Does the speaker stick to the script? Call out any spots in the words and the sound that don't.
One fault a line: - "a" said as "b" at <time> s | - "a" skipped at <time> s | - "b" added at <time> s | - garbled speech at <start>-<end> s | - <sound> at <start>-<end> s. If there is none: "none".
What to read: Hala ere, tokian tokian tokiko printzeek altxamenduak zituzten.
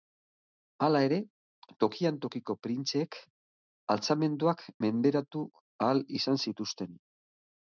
- "tokian" skipped at 2.2 s
- "menderatu ahal izan" added at 4.9 s